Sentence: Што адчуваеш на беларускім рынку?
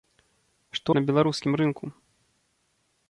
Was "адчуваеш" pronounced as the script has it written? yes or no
no